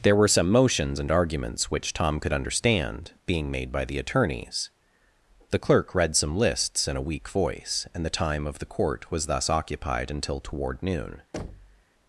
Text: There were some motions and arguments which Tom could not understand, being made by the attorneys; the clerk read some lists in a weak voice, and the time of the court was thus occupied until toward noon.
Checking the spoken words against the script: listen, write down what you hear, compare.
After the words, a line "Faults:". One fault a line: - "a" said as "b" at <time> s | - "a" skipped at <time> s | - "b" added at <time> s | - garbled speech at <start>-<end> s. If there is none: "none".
There were some motions and arguments which Tom could understand, being made by the attorneys; the clerk read some lists in a weak voice, and the time of the court was thus occupied until toward noon.
Faults:
- "not" skipped at 2.3 s